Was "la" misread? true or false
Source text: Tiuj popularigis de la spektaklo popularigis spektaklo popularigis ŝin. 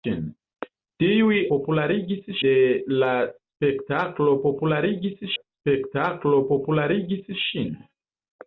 false